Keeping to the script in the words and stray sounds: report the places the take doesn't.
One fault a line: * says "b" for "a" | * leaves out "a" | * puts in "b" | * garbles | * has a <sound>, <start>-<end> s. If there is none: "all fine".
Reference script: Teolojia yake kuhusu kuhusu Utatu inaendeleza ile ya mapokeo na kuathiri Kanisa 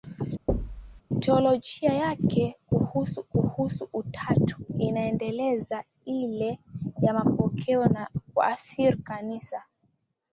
* has a thud, 0.5-1.0 s